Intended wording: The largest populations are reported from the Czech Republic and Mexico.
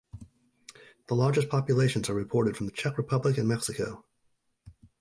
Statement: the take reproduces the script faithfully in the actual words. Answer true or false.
true